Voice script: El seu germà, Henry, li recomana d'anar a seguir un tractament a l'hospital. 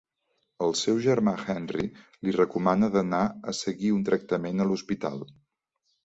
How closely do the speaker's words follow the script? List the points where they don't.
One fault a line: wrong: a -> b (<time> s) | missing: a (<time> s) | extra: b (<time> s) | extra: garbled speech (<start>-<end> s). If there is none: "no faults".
no faults